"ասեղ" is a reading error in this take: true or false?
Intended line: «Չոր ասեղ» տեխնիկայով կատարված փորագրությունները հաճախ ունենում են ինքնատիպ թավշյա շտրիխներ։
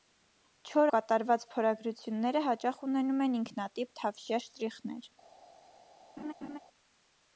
true